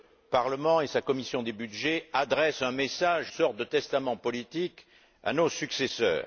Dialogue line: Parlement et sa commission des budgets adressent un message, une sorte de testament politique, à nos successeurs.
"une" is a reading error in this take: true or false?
true